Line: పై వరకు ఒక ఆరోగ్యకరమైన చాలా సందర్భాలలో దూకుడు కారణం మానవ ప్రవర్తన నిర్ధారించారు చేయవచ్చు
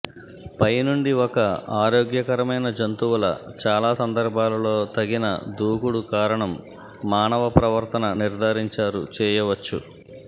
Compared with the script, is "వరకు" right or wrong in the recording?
wrong